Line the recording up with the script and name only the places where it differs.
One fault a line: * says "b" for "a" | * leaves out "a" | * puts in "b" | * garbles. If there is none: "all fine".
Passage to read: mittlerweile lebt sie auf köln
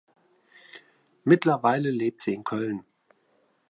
* says "in" for "auf"